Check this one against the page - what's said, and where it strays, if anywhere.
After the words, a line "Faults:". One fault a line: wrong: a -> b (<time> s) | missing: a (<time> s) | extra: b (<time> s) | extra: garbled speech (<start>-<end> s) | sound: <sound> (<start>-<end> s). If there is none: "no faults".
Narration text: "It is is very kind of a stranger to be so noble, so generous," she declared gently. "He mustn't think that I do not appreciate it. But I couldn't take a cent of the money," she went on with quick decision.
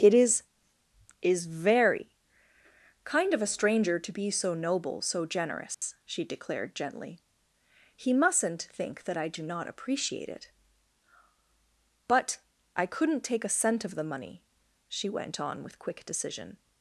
"It is is very kind of a stranger to be so noble, so generous," she declared gently. "He mustn't think that I do not appreciate it. But I couldn't take a cent of the money," she went on with quick decision.
Faults:
sound: dropout (5.7-5.8 s)